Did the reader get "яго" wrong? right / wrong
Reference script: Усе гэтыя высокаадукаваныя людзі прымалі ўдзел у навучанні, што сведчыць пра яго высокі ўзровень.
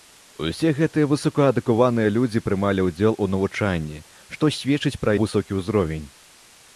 wrong